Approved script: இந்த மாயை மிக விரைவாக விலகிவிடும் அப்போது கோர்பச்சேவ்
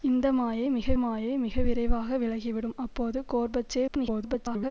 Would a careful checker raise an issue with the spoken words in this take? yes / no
yes